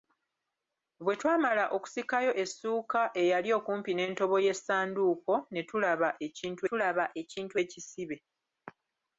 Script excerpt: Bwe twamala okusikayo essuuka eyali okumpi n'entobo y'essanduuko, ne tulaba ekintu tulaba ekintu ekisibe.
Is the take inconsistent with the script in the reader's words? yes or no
no